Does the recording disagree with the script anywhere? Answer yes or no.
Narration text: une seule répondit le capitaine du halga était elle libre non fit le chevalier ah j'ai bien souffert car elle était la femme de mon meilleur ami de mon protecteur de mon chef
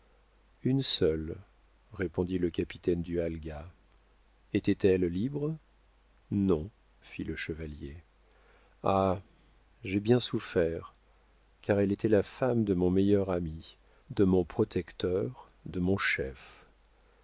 no